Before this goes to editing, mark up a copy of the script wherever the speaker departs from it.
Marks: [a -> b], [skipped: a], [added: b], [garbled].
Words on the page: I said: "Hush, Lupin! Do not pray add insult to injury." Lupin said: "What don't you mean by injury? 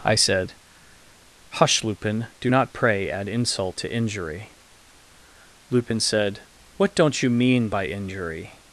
I said: "Hush, Lupin! Do not pray add insult to injury." Lupin said: "What don't you mean by injury?